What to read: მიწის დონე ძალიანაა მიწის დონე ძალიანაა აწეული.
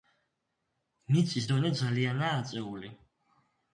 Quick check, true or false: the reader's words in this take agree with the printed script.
false